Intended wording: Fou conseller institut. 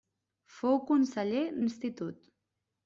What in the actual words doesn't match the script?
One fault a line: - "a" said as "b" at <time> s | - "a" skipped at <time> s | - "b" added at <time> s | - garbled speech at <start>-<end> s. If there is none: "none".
none